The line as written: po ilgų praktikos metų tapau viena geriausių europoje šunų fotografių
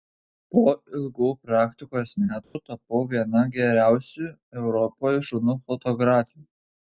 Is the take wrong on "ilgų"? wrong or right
right